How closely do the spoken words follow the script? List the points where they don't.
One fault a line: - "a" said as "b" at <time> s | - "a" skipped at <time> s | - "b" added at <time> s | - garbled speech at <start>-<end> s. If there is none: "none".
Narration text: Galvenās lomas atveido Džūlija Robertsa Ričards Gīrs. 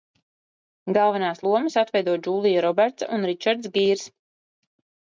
- "un" added at 3.2 s